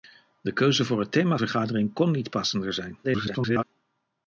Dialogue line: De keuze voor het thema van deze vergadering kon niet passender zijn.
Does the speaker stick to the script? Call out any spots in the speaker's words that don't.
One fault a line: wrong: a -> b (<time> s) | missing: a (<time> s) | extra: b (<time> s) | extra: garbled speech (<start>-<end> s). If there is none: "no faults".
missing: van deze (1.4 s)
extra: garbled speech (3.0-3.6 s)